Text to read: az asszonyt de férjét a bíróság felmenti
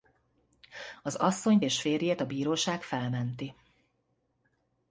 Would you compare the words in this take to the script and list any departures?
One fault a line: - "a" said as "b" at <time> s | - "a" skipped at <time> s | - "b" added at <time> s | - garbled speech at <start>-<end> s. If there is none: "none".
- "de" said as "és" at 1.6 s